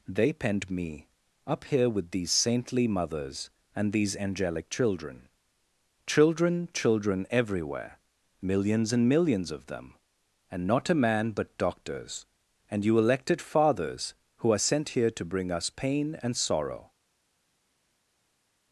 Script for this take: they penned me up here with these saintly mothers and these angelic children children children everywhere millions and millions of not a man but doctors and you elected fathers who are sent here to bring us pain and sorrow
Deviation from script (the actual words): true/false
true